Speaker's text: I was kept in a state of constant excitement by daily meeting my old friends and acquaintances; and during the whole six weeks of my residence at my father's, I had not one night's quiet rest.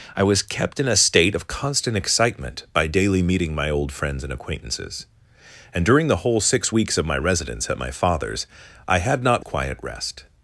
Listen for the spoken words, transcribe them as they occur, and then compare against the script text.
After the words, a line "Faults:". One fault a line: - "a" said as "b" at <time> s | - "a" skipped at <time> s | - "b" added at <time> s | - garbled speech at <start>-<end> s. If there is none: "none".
I was kept in a state of constant excitement by daily meeting my old friends and acquaintances; and during the whole six weeks of my residence at my father's, I had not quiet rest.
Faults:
- "one night's" skipped at 9.5 s